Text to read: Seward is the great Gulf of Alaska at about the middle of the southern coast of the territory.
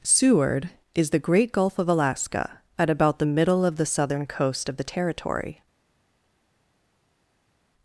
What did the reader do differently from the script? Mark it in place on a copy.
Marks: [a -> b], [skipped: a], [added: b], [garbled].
Seward is the great Gulf of Alaska at about the middle of the southern coast of the territory.